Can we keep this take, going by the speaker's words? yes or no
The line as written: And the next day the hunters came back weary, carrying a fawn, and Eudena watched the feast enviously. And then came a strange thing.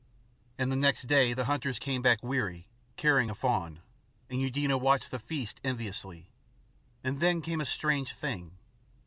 yes